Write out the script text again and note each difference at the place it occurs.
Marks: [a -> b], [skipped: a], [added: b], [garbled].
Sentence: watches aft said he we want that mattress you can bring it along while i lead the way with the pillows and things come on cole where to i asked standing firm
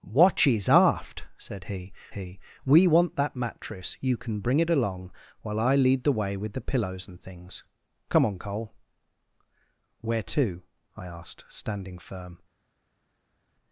watches aft said he [added: he] we want that mattress you can bring it along while i lead the way with the pillows and things come on cole where to i asked standing firm